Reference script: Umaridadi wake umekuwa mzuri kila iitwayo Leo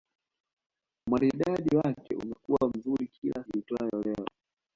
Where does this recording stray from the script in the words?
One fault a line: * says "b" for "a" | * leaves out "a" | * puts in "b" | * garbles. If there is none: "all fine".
all fine